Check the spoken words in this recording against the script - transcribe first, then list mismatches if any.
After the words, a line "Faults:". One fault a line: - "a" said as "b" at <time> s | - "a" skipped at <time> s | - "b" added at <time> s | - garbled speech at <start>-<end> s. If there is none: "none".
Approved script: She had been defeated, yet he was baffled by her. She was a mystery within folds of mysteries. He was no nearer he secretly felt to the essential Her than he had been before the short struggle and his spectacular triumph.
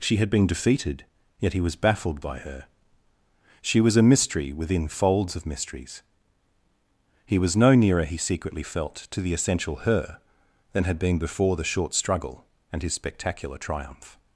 She had been defeated, yet he was baffled by her. She was a mystery within folds of mysteries. He was no nearer he secretly felt to the essential Her than had been before the short struggle and his spectacular triumph.
Faults:
- "he" skipped at 10.8 s